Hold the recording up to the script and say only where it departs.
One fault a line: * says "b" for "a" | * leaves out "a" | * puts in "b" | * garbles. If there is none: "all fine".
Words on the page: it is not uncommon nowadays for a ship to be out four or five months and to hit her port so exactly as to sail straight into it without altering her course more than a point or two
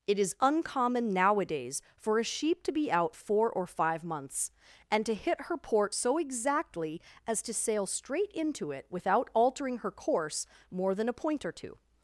* leaves out "not"
* says "sheep" for "ship"